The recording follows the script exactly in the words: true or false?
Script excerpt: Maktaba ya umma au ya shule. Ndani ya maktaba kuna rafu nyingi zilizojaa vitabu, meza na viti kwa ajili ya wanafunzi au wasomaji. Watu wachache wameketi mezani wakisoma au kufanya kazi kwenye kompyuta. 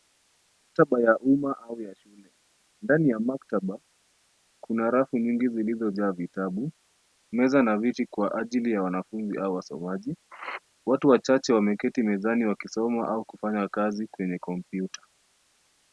true